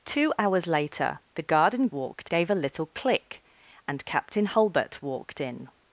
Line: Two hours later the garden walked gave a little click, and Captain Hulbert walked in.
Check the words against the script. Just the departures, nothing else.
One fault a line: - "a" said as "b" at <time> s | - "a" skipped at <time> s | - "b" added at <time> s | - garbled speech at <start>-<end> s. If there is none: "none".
none